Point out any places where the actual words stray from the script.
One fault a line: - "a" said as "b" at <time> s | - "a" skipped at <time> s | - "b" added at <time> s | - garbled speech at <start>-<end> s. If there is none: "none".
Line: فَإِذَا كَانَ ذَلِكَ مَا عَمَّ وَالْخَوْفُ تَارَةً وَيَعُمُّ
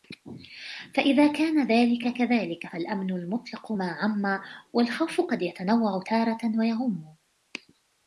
- "كَذَلِكَ فَالْأَمْنُ الْمُطْلَقُ" added at 2.2 s
- "قَدْ يَتَنَوَّعُ" added at 5.2 s